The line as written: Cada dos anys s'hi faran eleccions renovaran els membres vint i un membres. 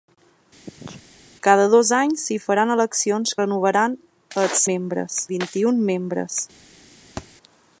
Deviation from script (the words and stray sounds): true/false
true